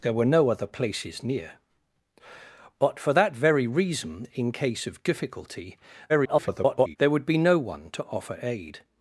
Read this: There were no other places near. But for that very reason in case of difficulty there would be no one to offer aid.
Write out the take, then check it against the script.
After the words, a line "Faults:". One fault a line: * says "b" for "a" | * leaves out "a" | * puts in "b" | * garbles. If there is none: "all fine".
There were no other places near. But for that very reason in case of difficulty [garbled] there would be no one to offer aid.
Faults:
* garbles